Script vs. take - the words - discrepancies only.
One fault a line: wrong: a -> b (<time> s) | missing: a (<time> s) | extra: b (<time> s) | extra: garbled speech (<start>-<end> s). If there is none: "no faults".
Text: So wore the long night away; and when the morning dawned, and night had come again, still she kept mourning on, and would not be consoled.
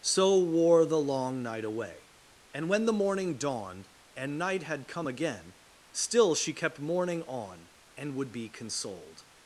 missing: not (8.3 s)